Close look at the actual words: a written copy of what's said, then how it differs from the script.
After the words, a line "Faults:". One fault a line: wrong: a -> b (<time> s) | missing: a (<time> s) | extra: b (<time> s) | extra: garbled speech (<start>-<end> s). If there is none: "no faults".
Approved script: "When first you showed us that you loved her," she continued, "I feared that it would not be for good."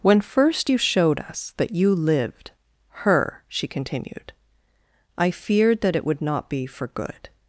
"When first you showed us that you lived her," she continued, "I feared that it would not be for good."
Faults:
wrong: loved -> lived (1.9 s)